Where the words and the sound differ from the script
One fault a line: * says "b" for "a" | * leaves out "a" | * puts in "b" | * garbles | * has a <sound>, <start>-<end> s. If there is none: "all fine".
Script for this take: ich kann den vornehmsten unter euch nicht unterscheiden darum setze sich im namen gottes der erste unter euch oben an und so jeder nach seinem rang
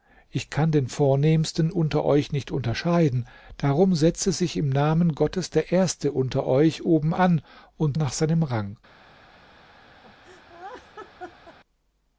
* leaves out "so jeder"
* has a laugh, 10.0-11.6 s